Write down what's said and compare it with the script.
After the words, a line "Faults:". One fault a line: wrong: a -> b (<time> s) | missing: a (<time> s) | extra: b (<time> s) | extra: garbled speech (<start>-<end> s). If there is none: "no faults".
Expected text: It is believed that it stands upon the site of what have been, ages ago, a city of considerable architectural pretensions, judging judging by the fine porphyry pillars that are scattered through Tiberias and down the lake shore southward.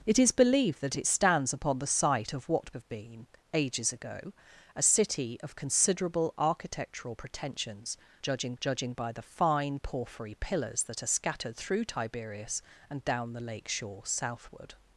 It is believed that it stands upon the site of what have been, ages ago, a city of considerable architectural pretensions, judging judging by the fine porphyry pillars that are scattered through Tiberias and down the lake shore southward.
Faults:
no faults